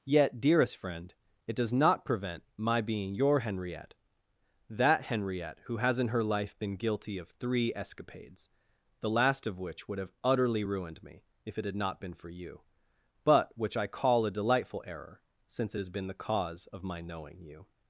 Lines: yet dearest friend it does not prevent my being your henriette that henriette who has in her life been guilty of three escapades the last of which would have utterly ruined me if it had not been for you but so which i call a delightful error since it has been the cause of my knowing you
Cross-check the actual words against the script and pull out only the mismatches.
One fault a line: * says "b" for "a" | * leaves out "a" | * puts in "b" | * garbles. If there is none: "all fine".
* leaves out "so"